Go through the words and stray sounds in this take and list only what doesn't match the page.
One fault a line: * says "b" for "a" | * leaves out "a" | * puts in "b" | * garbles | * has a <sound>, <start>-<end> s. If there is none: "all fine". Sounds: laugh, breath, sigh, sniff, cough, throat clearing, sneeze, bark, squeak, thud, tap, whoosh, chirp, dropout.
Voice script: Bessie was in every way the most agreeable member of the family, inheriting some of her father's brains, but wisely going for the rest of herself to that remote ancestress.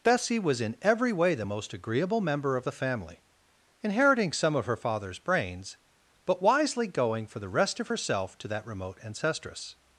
all fine